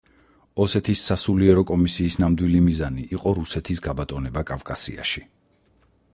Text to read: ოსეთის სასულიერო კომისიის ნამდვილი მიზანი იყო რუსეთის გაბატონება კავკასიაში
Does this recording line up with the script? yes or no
yes